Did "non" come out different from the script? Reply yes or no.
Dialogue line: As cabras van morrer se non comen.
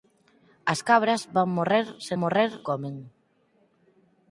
yes